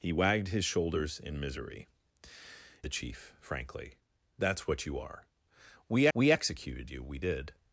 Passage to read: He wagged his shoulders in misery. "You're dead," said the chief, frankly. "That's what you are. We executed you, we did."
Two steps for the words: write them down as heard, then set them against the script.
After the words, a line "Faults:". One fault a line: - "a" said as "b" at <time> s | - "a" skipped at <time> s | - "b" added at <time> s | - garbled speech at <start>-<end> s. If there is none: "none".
He wagged his shoulders in misery. "The chief, frankly. "That's what you are. We we executed you, we did."
Faults:
- "You're dead said" skipped at 1.9 s
- "we" added at 6.1 s